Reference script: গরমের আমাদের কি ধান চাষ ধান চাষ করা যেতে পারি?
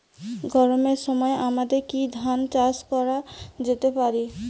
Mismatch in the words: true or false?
true